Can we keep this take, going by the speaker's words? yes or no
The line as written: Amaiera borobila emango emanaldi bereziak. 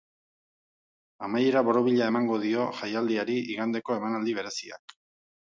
no